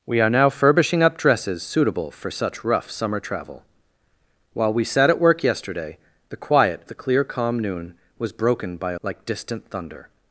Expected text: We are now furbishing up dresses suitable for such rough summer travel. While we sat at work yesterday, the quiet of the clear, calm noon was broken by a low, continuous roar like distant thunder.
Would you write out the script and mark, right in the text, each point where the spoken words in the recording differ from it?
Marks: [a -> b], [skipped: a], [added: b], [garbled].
We are now furbishing up dresses suitable for such rough summer travel. While we sat at work yesterday, the quiet [skipped: of] the clear, calm noon was broken by a [skipped: low, continuous roar] like distant thunder.